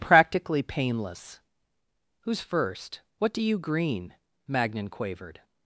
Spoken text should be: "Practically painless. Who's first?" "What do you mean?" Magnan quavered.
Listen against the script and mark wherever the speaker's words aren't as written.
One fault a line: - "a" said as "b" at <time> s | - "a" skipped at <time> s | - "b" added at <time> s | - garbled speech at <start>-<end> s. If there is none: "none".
- "mean" said as "green" at 3.6 s